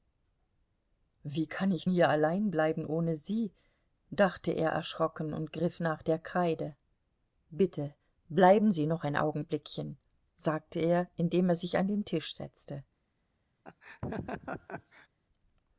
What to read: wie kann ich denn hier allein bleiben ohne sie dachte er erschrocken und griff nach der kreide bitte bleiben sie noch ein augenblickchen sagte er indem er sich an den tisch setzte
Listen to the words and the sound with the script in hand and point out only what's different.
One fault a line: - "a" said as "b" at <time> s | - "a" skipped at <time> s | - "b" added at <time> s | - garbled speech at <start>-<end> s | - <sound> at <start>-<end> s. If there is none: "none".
- "denn" skipped at 1.9 s
- laugh at 13.6-15.1 s